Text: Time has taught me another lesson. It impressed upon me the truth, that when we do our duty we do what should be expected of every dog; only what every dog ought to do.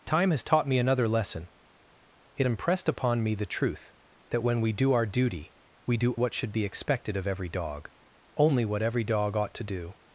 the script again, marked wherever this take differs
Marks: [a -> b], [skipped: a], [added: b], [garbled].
Time has taught me another lesson. It impressed upon me the truth, that when we do our duty we do what should be expected of every dog; only what every dog ought to do.